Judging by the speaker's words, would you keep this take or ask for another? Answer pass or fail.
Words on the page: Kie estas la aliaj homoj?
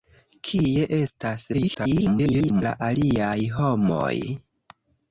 fail